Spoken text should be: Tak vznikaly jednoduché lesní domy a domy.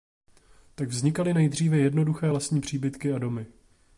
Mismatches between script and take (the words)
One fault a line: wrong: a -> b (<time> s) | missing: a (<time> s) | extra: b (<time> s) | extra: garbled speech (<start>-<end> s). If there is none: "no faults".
extra: nejdříve (1.3 s)
wrong: domy -> příbytky (2.6 s)